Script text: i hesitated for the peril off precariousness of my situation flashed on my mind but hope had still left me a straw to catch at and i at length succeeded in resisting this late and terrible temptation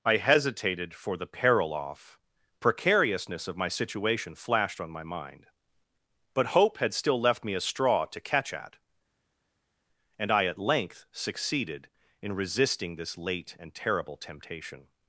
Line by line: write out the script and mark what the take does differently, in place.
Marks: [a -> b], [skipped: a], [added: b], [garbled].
i hesitated for the peril off precariousness of my situation flashed on my mind but hope had still left me a straw to catch at and i at length succeeded in resisting this late and terrible temptation